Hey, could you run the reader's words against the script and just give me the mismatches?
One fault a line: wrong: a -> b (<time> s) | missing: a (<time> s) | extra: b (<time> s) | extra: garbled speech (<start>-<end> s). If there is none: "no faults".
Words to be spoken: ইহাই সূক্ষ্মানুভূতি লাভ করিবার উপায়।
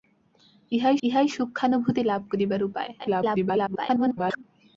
extra: ইহাই (1.0 s)
extra: garbled speech (3.0-4.4 s)